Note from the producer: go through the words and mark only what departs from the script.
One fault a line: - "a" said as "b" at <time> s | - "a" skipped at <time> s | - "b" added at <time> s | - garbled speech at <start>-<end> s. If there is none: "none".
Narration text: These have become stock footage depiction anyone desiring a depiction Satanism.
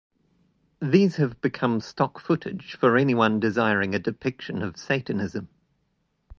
- "depiction" said as "for" at 2.8 s
- "of" added at 4.6 s